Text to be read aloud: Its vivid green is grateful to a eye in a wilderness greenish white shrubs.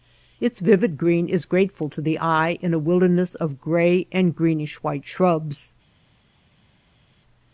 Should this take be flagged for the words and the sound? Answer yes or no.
yes